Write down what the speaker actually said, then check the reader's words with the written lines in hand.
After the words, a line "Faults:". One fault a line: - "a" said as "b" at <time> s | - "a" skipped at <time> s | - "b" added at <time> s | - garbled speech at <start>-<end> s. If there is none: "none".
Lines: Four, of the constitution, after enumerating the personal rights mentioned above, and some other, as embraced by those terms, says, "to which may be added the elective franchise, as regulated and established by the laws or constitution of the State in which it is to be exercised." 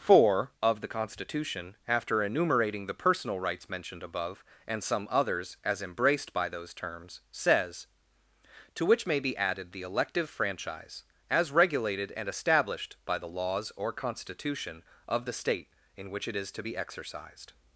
Four, of the constitution, after enumerating the personal rights mentioned above, and some others, as embraced by those terms, says, "to which may be added the elective franchise, as regulated and established by the laws or constitution of the State in which it is to be exercised."
Faults:
- "other" said as "others" at 5.1 s